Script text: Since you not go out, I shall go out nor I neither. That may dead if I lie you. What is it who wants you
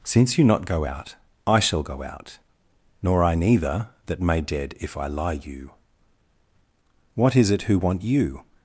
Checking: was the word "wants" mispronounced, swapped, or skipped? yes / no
yes